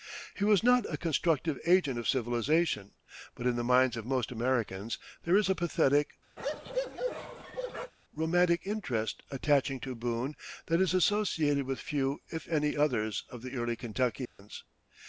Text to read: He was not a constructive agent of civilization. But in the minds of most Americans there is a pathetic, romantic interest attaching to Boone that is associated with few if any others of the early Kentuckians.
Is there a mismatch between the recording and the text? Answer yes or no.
no